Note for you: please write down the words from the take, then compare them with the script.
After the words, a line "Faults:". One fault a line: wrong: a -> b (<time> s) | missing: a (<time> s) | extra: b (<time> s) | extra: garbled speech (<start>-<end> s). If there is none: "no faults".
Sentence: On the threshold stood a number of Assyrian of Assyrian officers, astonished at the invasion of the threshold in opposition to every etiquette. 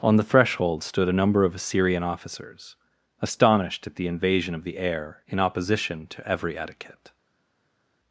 On the threshold stood a number of Assyrian officers, astonished at the invasion of the heir in opposition to every etiquette.
Faults:
missing: of Assyrian (2.0 s)
wrong: threshold -> heir (4.8 s)